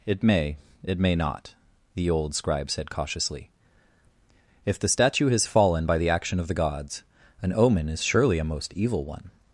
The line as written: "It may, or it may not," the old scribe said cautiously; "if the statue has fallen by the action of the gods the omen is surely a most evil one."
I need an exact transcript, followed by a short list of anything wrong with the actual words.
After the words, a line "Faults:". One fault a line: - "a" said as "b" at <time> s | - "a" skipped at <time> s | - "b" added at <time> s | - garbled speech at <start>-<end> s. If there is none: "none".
"It may, it may not," the old scribe said cautiously; "if the statue has fallen by the action of the gods an omen is surely a most evil one."
Faults:
- "or" skipped at 0.6 s
- "the" said as "an" at 7.4 s